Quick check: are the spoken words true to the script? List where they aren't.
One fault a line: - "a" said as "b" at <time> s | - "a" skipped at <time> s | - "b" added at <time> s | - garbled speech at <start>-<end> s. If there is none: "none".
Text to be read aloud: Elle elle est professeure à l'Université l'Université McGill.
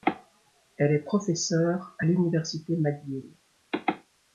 - "elle" skipped at 0.9 s
- "l'Université" skipped at 2.8 s